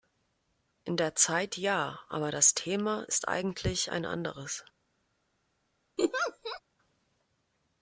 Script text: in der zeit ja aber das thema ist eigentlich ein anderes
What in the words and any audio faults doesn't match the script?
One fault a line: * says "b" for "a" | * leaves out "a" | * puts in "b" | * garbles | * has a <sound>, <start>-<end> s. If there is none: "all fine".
* has a laugh, 6.0-6.6 s